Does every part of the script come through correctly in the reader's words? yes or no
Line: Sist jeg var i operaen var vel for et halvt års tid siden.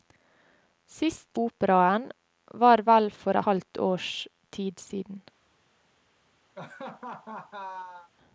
no